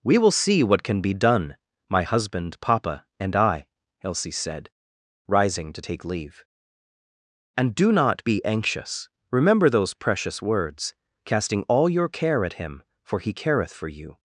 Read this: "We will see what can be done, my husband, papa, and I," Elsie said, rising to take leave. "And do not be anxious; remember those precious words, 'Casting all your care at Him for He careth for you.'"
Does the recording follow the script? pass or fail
pass